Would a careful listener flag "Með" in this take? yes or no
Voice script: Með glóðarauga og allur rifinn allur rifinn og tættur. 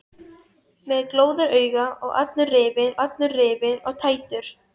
no